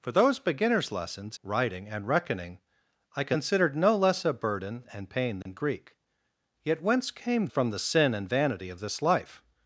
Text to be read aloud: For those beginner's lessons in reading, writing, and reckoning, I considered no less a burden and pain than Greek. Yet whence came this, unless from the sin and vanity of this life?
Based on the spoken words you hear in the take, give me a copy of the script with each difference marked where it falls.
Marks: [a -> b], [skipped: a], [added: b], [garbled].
For those beginner's lessons [skipped: in reading,] writing, and reckoning, I considered no less a burden and pain than Greek. Yet whence came [skipped: this, unless] from the sin and vanity of this life?